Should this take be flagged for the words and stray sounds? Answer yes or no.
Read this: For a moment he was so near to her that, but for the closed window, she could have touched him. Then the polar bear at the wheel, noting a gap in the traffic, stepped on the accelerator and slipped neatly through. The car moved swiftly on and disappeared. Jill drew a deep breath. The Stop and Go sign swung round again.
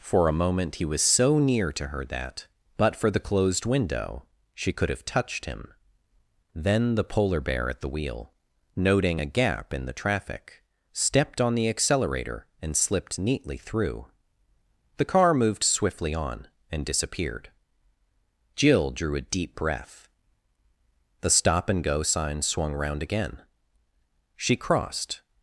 yes